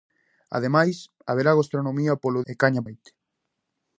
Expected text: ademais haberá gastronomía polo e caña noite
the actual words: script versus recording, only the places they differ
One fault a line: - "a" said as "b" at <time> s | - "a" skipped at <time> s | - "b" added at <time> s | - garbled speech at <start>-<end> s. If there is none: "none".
none